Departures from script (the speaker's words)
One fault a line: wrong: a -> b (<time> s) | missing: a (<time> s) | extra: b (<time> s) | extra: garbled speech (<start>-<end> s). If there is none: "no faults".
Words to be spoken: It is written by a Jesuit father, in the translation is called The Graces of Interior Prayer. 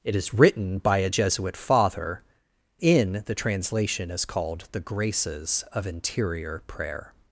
no faults